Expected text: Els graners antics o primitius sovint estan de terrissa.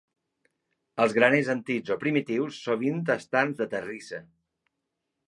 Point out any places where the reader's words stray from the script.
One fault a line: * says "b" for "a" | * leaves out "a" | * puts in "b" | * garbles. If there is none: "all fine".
all fine